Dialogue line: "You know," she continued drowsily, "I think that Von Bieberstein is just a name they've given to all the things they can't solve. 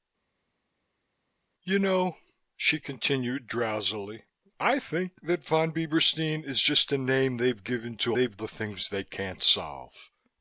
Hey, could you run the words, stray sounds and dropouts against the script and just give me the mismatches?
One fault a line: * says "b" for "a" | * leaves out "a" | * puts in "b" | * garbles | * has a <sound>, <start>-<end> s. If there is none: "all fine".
* says "they've" for "all"